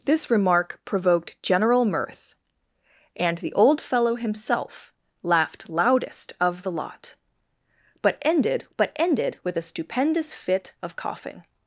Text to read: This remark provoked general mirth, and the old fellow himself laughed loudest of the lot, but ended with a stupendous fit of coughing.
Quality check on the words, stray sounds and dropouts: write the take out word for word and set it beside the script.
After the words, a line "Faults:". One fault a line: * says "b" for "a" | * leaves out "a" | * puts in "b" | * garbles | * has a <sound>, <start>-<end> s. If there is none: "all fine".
This remark provoked general mirth, and the old fellow himself laughed loudest of the lot, but ended but ended with a stupendous fit of coughing.
Faults:
* puts in "but ended"